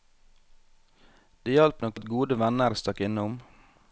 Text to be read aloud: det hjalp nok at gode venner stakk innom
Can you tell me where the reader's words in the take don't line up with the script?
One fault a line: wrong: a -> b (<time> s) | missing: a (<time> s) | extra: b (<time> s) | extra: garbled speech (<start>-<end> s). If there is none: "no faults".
no faults